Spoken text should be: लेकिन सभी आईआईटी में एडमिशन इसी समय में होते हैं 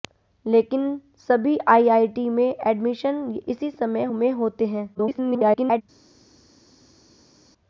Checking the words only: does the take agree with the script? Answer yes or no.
no